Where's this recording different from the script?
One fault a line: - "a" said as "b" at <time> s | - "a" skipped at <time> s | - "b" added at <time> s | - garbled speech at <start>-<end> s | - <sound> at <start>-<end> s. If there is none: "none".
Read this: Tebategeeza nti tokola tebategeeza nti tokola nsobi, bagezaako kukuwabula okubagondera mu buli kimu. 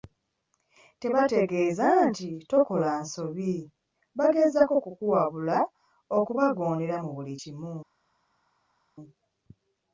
- "tebategeeza nti tokola" skipped at 2.9 s